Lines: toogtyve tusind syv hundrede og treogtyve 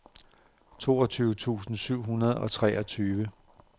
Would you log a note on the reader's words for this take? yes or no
no